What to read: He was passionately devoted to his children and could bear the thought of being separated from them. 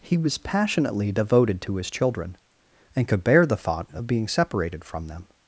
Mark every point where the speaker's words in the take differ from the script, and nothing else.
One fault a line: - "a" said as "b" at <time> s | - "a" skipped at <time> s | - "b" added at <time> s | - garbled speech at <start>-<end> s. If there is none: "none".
none